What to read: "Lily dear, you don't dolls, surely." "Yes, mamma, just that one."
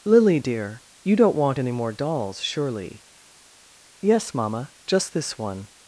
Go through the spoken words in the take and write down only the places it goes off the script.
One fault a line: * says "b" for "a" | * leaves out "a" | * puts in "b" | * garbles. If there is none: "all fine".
* puts in "want any more"
* says "this" for "that"